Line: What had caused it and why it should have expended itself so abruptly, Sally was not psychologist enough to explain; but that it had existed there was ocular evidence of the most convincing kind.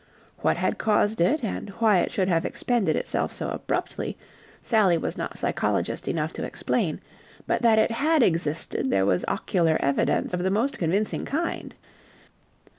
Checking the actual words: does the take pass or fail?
pass